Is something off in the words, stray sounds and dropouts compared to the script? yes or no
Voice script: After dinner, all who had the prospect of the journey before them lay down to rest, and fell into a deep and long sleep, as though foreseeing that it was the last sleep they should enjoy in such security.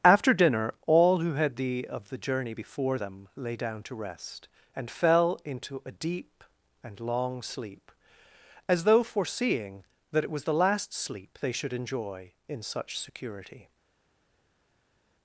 yes